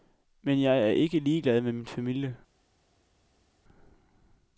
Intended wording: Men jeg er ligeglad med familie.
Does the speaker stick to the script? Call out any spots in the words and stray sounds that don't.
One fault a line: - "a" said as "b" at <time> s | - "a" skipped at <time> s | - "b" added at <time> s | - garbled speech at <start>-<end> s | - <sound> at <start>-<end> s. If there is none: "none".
- "ikke" added at 0.9 s
- "min" added at 1.7 s